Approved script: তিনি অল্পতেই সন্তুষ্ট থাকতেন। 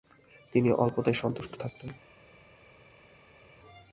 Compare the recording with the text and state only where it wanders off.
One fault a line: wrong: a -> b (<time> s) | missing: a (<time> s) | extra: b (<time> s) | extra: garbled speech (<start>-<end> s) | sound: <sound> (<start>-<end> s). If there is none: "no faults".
no faults